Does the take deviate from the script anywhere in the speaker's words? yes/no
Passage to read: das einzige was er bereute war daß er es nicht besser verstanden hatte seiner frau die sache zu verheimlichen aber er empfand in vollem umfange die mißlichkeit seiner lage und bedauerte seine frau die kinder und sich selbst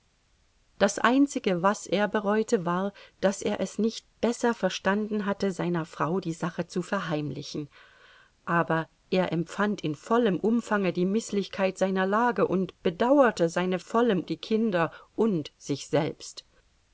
yes